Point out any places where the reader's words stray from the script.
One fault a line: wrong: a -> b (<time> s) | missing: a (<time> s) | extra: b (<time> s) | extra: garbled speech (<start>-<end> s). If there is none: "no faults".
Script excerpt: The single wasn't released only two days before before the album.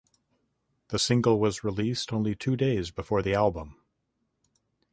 wrong: wasn't -> was (1.4 s)
missing: before (3.2 s)